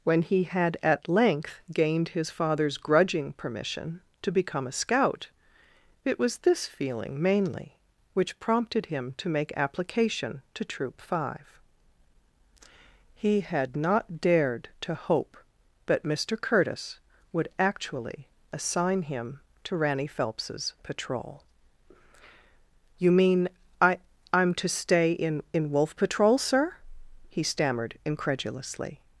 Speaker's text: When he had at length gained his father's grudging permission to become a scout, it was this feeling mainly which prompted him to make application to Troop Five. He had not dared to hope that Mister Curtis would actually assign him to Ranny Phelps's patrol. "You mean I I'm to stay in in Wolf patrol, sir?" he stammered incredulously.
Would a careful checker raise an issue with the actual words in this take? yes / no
no